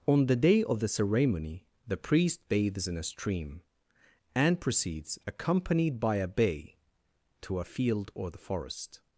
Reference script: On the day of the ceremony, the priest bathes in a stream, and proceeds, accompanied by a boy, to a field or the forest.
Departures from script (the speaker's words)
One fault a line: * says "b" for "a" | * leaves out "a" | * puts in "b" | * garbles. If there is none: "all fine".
* says "bay" for "boy"